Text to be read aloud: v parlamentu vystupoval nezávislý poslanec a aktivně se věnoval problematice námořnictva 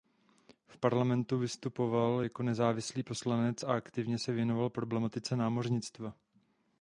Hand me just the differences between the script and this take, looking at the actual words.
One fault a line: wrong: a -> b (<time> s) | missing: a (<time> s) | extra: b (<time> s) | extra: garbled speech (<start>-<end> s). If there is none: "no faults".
extra: jako (2.2 s)